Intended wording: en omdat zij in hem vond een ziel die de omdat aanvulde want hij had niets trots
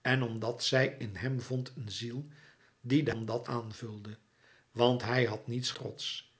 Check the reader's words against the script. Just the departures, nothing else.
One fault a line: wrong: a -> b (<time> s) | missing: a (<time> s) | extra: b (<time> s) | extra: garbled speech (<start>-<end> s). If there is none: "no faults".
no faults